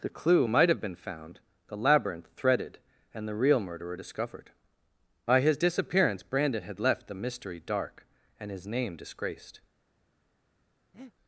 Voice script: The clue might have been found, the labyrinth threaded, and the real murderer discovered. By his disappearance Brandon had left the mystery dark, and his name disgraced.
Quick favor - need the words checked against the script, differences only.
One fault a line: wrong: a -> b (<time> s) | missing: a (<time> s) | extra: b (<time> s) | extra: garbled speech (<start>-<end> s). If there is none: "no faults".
no faults